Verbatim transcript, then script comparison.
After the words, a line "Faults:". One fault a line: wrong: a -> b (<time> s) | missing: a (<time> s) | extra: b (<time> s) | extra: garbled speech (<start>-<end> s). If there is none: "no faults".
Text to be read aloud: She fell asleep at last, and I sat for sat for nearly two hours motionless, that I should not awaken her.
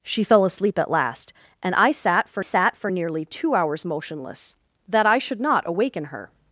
She fell asleep at last, and I sat for sat for nearly two hours motionless, that I should not awaken her.
Faults:
no faults